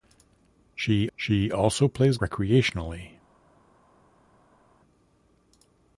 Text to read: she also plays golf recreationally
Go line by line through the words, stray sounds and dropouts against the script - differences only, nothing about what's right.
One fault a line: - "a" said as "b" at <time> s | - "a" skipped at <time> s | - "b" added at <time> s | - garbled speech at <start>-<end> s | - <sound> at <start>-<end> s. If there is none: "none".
- "she" added at 1.2 s
- "golf" skipped at 2.2 s